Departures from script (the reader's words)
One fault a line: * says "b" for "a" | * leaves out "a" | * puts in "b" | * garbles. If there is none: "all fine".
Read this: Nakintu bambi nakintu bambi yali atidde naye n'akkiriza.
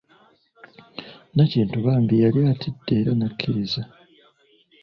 * leaves out "nakintu bambi"
* says "era" for "naye"